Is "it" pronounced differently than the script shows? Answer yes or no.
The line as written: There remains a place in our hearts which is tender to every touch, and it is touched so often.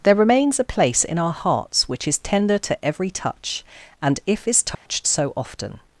yes